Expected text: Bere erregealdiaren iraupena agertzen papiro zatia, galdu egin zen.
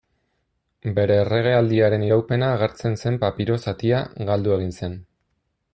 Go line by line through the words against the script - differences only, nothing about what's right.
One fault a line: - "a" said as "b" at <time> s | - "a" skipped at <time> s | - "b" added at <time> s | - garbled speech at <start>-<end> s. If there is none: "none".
- "zen" added at 3.0 s